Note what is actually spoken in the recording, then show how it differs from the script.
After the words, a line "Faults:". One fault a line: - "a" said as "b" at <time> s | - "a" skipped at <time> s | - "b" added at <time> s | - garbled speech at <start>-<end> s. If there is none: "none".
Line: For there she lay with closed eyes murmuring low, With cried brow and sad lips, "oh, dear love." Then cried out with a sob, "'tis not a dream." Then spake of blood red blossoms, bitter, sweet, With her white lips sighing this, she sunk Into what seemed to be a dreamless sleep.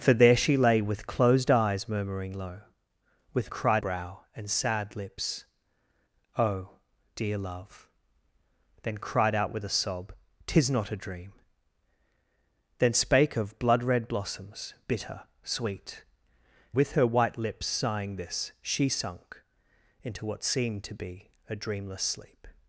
For there she lay with closed eyes murmuring low, With cried brow and sad lips, "oh, dear love." Then cried out with a sob, "'tis not a dream." Then spake of blood red blossoms, bitter, sweet, With her white lips sighing this, she sunk Into what seemed to be a dreamless sleep.
Faults:
none